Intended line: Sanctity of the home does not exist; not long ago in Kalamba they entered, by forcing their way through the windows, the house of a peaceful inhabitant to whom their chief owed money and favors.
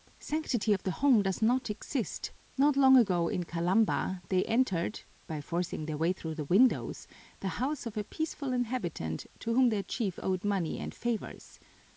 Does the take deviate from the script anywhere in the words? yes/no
no